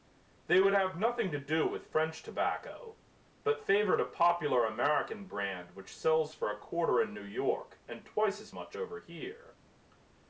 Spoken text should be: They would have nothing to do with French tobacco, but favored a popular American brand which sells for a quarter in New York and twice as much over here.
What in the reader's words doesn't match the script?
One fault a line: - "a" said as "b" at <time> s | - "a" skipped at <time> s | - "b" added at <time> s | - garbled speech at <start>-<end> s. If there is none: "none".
none